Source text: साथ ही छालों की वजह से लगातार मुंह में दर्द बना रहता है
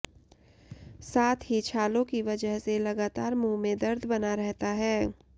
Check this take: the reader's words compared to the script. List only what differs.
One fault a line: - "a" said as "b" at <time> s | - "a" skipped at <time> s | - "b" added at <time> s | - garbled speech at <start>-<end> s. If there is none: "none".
none